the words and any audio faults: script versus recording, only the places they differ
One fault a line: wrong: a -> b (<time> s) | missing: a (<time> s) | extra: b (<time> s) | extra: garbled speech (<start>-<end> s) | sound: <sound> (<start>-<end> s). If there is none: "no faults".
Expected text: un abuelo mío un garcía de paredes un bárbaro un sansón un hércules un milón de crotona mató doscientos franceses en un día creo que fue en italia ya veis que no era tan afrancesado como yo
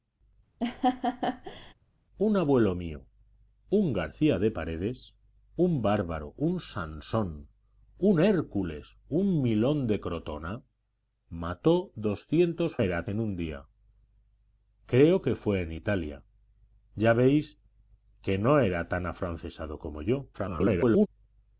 sound: laugh (0.6-1.7 s)
wrong: franceses -> era (12.8 s)
extra: garbled speech (20.3-21.1 s)